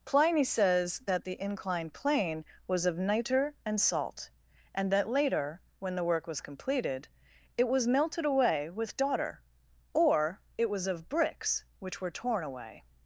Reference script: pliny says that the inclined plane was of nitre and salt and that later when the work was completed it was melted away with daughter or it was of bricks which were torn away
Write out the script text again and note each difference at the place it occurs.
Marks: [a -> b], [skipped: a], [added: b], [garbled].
pliny says that the inclined plane was of nitre and salt and that later when the work was completed it was melted away with daughter or it was of bricks which were torn away